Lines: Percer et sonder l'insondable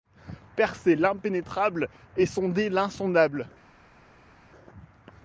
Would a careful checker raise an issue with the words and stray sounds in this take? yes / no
yes